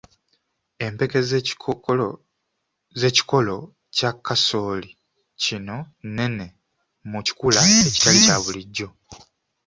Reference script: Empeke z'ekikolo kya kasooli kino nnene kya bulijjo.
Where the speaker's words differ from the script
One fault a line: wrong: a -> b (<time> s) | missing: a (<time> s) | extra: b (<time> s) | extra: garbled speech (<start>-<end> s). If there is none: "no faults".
extra: mu kikula ekitali (7.1 s)